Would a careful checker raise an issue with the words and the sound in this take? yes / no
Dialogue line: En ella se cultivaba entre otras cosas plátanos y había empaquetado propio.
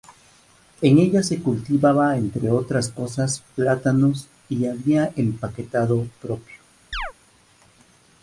yes